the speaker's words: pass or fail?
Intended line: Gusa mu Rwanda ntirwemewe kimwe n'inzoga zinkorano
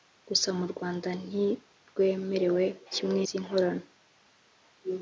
fail